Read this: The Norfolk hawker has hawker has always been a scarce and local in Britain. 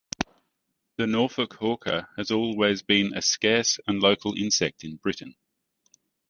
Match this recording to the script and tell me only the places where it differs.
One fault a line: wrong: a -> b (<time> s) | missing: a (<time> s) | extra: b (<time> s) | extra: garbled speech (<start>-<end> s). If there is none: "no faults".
missing: hawker has (2.3 s)
extra: insect (4.3 s)